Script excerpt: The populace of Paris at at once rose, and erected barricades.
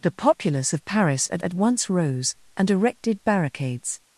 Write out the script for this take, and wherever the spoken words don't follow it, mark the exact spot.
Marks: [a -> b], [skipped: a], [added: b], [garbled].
The populace of Paris at at once rose, and erected barricades.